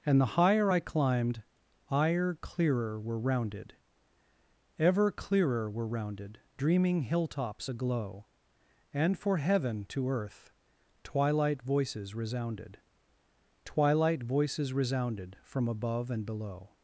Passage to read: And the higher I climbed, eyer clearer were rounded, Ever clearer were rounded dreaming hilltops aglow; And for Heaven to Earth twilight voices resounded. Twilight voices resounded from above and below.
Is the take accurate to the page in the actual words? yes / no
yes